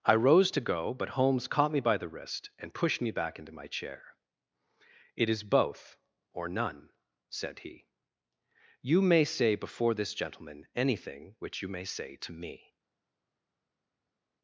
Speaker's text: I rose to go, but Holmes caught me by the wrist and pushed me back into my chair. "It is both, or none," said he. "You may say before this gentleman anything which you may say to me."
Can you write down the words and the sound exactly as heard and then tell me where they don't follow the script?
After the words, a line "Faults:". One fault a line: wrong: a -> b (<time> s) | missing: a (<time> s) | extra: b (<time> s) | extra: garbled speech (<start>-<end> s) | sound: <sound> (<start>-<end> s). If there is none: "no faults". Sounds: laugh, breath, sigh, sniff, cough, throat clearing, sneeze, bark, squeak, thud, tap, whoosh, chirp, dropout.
I rose to go, but Holmes caught me by the wrist and pushed me back into my chair. "It is both, or none," said he. "You may say before this gentleman anything which you may say to me."
Faults:
no faults